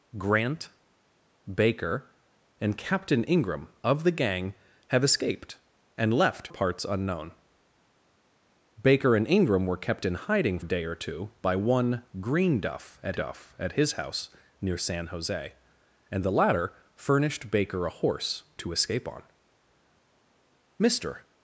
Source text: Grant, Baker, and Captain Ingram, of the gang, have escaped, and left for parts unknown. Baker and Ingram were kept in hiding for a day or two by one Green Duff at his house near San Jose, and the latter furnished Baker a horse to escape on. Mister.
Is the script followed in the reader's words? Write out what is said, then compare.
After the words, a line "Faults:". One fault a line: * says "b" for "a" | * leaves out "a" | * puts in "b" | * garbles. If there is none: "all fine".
Grant, Baker, and Captain Ingram, of the gang, have escaped, and left parts unknown. Baker and Ingram were kept in hiding a day or two by one Green Duff at Duff at his house near San Jose, and the latter furnished Baker a horse to escape on. Mister.
Faults:
* leaves out "for"
* leaves out "for"
* puts in "Duff at"